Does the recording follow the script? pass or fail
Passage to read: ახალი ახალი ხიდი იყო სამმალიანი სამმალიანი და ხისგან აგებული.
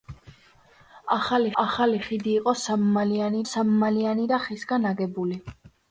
pass